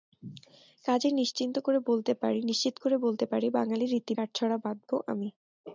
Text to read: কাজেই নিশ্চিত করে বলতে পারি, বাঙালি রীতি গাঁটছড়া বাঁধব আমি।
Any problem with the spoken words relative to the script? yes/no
no